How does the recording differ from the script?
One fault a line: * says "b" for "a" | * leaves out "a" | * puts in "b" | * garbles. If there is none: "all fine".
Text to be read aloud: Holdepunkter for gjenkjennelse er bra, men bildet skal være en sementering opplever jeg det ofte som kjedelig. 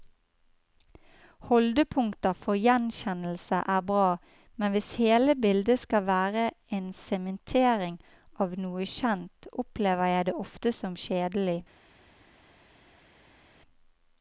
* puts in "hvis hele"
* puts in "av noe kjent"